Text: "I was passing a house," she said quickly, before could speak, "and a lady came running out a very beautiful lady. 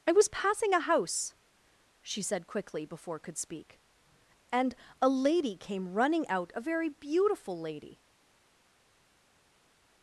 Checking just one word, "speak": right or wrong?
right